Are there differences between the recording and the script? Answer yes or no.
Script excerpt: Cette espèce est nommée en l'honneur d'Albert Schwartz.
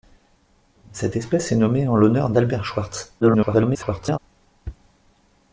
yes